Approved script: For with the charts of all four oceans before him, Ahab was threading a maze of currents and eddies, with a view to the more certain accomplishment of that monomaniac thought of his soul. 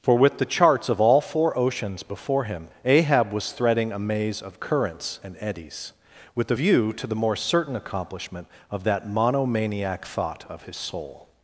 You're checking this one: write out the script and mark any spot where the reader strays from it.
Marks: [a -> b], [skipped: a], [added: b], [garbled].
For with the charts of all four oceans before him, Ahab was threading a maze of currents and eddies, with a view to the more certain accomplishment of that monomaniac thought of his soul.